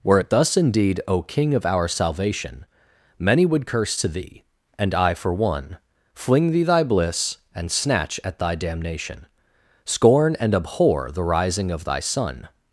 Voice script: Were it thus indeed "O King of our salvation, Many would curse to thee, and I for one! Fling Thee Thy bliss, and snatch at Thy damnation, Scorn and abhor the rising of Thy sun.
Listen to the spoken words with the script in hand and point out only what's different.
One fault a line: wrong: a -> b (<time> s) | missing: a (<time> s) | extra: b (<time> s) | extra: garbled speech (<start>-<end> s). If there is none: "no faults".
no faults